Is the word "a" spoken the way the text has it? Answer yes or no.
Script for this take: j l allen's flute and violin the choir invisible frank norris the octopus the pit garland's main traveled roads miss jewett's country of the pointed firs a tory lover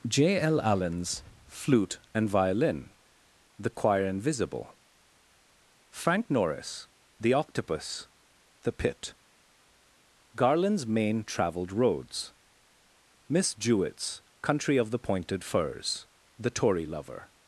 no